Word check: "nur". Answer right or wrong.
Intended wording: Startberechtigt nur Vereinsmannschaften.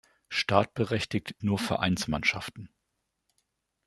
right